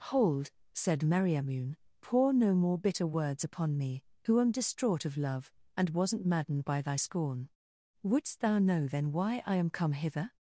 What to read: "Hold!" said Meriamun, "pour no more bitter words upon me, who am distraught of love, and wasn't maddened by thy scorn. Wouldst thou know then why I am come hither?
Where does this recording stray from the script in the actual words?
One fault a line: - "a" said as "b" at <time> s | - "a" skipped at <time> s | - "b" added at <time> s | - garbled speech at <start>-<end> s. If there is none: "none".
none